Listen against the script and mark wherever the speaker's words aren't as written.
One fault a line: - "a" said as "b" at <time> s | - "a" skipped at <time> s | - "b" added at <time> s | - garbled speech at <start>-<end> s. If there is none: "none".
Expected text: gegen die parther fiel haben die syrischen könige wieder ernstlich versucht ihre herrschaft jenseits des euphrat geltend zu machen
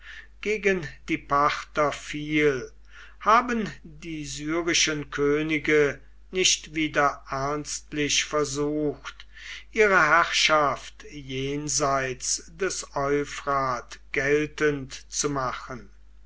- "nicht" added at 6.3 s